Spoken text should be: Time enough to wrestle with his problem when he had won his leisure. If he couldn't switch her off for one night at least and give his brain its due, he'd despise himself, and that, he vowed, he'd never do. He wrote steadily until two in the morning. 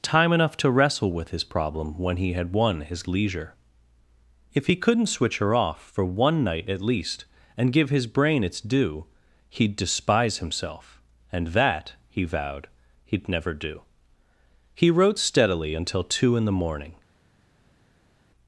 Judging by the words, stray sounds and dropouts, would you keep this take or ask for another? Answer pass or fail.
pass